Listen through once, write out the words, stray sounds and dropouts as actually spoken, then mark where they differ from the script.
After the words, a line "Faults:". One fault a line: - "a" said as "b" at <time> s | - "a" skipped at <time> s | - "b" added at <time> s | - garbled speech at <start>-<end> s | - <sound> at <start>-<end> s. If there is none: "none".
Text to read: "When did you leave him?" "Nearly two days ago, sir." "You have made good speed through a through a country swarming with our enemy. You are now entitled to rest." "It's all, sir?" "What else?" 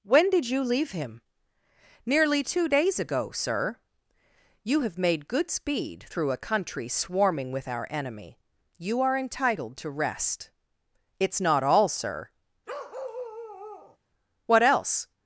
"When did you leave him?" "Nearly two days ago, sir." "You have made good speed through a country swarming with our enemy. You are entitled to rest." "It's not all, sir?" "What else?"
Faults:
- "through a" skipped at 6.4 s
- "now" skipped at 9.2 s
- "not" added at 11.4 s
- bark at 12.7-14.0 s